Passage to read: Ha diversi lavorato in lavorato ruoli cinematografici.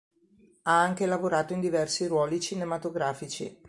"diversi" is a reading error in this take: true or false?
true